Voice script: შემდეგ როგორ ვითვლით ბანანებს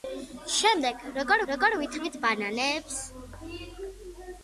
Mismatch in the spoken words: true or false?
true